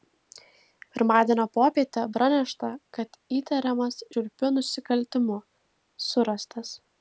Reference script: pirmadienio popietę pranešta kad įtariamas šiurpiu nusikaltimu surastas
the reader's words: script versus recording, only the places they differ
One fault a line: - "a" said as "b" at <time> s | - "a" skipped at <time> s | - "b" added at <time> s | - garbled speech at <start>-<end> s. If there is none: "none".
none